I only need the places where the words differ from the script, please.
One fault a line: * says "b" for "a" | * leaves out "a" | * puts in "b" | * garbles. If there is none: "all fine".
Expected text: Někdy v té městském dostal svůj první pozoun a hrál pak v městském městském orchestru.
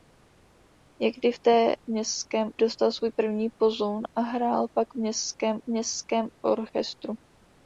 all fine